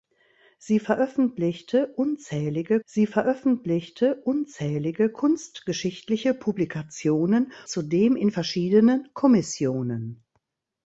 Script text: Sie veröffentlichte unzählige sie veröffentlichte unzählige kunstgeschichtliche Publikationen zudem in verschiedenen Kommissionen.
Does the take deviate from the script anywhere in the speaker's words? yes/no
no